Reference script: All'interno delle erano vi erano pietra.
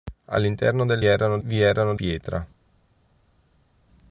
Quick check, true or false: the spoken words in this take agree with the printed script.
true